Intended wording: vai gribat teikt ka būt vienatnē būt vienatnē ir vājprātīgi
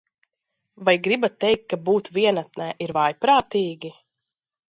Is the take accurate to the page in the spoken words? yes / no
no